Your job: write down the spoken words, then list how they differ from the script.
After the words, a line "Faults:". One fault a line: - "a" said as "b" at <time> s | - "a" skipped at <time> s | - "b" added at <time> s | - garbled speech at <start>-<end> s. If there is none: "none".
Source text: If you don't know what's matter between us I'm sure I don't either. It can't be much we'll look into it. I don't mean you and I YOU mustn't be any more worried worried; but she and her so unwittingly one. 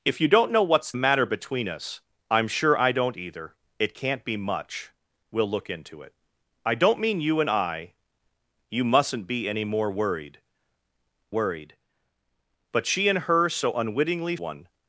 If you don't know what's matter between us I'm sure I don't either. It can't be much we'll look into it. I don't mean you and I YOU mustn't be any more worried worried; but she and her so unwittingly one.
Faults:
none